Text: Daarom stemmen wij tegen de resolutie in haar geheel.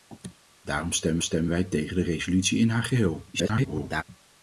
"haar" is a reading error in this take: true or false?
false